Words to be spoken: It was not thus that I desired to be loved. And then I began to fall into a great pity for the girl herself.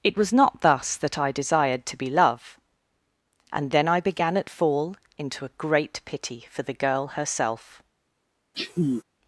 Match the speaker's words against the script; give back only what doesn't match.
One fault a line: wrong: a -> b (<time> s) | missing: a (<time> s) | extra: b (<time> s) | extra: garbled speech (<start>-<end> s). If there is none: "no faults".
wrong: loved -> love (2.1 s)
wrong: to -> at (4.4 s)